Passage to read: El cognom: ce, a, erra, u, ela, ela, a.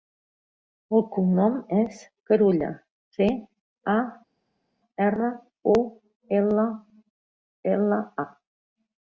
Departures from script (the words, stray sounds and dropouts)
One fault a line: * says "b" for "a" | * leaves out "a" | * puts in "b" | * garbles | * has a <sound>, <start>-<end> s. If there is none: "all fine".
* puts in "és Carulla"